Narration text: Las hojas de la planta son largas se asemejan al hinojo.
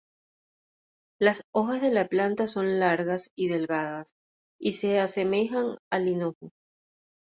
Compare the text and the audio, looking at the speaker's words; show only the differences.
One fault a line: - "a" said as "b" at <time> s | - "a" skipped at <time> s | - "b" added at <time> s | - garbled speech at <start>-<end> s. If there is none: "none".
- "y delgadas y" added at 3.4 s